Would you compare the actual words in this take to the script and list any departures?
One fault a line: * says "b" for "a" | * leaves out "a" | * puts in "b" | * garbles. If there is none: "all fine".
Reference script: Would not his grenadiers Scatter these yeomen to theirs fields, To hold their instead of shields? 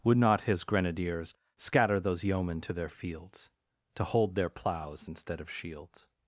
* says "those" for "these"
* says "their" for "theirs"
* puts in "ploughs"